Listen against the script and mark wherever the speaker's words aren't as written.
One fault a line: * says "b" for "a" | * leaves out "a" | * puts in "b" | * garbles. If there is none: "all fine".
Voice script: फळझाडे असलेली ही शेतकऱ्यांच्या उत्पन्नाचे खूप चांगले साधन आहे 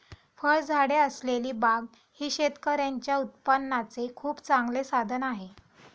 * puts in "बाग"